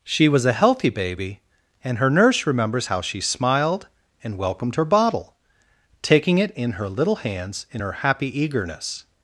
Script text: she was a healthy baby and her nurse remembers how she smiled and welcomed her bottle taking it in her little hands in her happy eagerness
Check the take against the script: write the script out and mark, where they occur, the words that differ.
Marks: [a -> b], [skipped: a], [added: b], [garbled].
she was a healthy baby and her nurse remembers how she smiled and welcomed her bottle taking it in her little hands in her happy eagerness